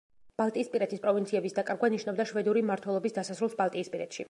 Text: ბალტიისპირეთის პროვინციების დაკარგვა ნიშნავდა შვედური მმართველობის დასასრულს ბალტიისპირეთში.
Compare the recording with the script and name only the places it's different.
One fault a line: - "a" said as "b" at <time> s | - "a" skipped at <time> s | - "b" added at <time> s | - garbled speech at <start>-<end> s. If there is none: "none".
none